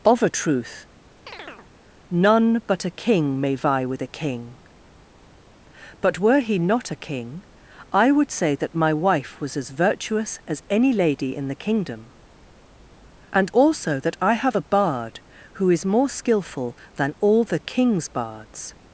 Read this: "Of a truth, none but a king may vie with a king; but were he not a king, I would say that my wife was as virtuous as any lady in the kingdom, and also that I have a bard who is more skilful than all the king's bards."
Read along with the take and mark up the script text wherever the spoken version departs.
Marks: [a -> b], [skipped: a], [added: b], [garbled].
"Of a truth, none but a king may vie with a king; but were he not a king, I would say that my wife was as virtuous as any lady in the kingdom, and also that I have a bard who is more skilful than all the king's bards."